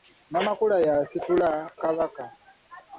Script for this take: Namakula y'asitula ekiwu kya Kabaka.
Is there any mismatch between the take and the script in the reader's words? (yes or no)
yes